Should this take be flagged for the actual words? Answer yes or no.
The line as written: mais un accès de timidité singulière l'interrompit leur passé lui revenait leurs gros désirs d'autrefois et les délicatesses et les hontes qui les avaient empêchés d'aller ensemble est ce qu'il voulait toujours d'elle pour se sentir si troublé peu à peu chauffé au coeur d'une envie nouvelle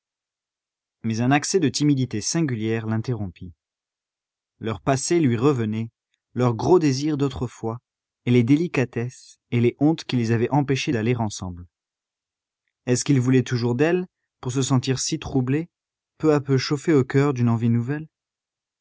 no